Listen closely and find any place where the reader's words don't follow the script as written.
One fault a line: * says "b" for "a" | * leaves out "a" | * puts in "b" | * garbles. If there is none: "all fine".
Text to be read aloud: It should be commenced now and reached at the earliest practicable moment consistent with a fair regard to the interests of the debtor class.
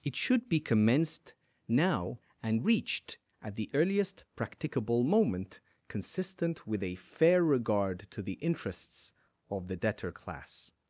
all fine